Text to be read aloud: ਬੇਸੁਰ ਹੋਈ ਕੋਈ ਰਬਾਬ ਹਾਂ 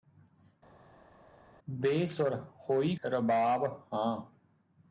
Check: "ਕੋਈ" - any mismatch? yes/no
yes